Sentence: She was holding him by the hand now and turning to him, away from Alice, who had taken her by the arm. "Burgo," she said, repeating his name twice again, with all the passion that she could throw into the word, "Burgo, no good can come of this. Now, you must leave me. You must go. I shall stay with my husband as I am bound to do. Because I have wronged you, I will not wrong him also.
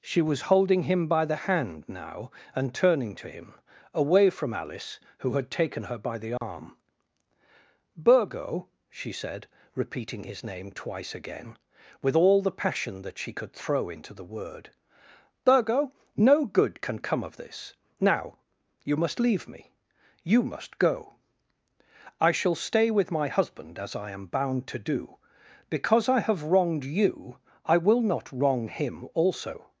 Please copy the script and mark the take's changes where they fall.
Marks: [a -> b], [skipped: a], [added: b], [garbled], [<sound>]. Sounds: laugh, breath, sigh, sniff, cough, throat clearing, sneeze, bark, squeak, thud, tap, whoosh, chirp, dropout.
She was holding him by the hand now and turning to him, away from Alice, who had taken her by the arm. [dropout] "Burgo," she said, repeating his name twice again, with all the passion that she could throw into the word, "Burgo, no good can come of this. Now, you must leave me. You must go. I shall stay with my husband as I am bound to do. Because I have wronged you, I will not wrong him also.